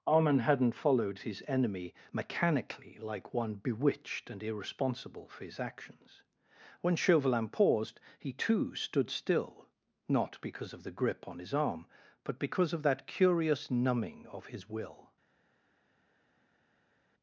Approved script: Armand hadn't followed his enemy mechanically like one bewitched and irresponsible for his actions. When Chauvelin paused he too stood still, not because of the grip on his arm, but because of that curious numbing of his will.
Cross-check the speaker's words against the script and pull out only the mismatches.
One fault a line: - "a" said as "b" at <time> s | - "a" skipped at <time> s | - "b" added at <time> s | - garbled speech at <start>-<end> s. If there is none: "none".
none